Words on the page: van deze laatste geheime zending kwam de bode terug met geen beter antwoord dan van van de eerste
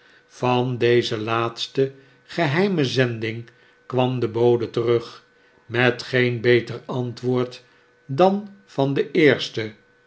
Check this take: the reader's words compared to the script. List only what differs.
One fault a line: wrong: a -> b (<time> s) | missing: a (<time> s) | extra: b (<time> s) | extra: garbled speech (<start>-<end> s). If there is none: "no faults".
missing: van (8.9 s)